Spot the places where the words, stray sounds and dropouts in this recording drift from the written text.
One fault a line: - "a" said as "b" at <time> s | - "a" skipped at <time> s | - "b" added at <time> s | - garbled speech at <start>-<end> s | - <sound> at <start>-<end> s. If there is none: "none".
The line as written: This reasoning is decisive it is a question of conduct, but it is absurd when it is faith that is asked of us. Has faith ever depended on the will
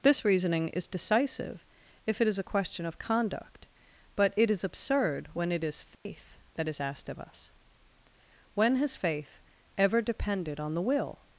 - "if" added at 2.1 s
- dropout at 5.9-6.1 s
- "When" added at 8.5 s